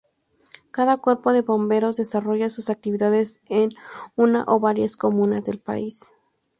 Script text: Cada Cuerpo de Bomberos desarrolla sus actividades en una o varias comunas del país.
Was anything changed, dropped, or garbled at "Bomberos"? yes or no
no